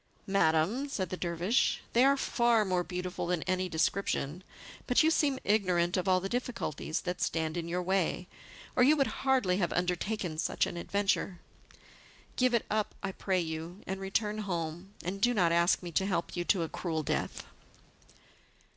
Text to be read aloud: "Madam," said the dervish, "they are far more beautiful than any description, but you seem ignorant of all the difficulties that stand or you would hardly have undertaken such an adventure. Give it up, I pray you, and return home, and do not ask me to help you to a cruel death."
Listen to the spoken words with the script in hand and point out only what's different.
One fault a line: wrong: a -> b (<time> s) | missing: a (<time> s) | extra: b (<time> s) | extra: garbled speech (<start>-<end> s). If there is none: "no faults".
extra: in your way (7.5 s)